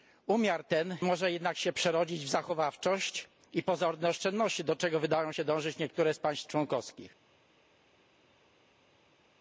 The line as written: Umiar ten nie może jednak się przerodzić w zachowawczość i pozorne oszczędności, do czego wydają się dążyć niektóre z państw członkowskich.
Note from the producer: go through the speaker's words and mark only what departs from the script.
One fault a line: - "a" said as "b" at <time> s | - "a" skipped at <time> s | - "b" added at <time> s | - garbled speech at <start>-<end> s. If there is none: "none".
- "nie" skipped at 1.0 s